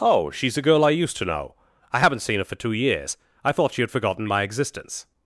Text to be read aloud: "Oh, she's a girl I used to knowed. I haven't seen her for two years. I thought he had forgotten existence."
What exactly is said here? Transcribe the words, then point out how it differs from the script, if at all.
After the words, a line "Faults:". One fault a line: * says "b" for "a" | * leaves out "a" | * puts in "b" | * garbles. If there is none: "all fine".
"Oh, she's a girl I used to know. I haven't seen her for two years. I thought she had forgotten my existence."
Faults:
* says "know" for "knowed"
* says "she" for "he"
* puts in "my"